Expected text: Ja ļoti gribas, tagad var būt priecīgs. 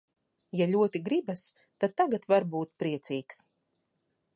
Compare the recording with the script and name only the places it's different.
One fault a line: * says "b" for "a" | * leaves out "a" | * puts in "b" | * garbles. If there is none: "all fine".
* puts in "tad"